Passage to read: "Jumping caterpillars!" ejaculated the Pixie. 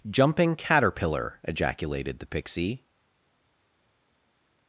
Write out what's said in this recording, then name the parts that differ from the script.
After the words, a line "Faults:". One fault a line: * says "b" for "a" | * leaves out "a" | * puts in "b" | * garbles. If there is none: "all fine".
"Jumping caterpillar!" ejaculated the Pixie.
Faults:
* says "caterpillar" for "caterpillars"